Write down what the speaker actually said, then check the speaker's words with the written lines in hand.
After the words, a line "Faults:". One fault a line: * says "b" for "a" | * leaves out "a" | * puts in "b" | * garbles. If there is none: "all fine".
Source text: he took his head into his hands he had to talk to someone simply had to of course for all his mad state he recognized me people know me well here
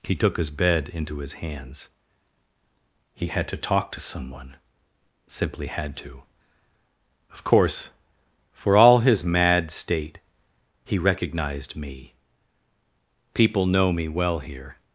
he took his bed into his hands he had to talk to someone simply had to of course for all his mad state he recognized me people know me well here
Faults:
* says "bed" for "head"